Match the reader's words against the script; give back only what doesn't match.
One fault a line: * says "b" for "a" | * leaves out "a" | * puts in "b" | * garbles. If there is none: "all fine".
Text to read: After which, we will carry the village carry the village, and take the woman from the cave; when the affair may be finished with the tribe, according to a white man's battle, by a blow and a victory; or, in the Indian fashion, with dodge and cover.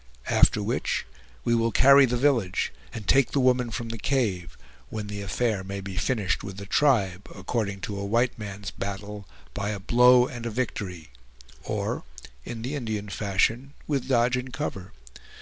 * leaves out "carry the village"